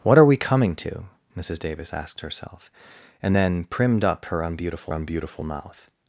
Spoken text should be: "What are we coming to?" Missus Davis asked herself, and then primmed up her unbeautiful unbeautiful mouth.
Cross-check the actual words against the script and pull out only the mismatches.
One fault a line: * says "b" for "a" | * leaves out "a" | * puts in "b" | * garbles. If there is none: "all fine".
all fine